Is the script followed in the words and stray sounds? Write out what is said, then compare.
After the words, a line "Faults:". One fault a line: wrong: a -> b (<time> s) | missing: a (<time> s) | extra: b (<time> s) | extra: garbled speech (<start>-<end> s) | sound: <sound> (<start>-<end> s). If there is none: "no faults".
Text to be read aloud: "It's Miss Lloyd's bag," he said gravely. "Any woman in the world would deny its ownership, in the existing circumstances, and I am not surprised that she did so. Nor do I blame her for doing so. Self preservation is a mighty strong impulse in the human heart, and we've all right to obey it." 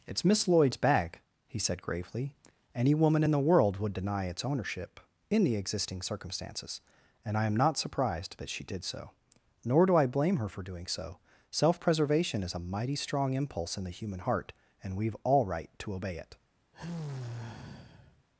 "It's Miss Lloyd's bag," he said gravely. "Any woman in the world would deny its ownership, in the existing circumstances, and I am not surprised that she did so. Nor do I blame her for doing so. Self preservation is a mighty strong impulse in the human heart, and we've all right to obey it."
Faults:
sound: sigh (16.7-18.3 s)